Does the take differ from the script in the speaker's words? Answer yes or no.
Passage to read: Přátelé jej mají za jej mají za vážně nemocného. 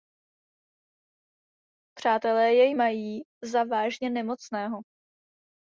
yes